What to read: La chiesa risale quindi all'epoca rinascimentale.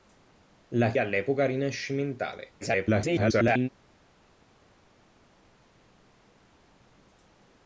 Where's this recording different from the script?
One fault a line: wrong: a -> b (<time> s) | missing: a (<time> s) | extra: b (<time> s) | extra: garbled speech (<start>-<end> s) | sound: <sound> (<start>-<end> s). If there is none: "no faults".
missing: chiesa risale quindi (0.9 s)
extra: garbled speech (2.6-3.7 s)